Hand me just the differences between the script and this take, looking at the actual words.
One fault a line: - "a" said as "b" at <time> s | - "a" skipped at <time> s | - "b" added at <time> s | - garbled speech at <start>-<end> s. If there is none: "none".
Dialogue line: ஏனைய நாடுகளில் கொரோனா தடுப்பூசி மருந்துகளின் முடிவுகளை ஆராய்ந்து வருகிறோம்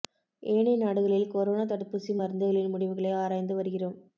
none